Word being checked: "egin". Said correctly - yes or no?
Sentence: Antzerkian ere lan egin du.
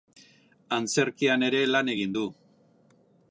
yes